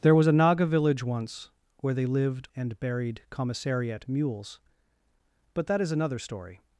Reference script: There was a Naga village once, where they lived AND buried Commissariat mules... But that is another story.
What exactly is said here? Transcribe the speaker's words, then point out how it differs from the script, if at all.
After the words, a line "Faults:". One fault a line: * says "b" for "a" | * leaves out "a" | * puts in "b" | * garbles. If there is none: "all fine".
There was a Naga village once, where they lived AND buried Commissariat mules... But that is another story.
Faults:
all fine